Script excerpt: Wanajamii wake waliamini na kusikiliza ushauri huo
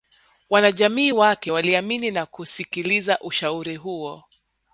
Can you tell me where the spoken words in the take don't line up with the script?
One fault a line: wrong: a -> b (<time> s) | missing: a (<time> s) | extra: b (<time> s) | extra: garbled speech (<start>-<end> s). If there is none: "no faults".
no faults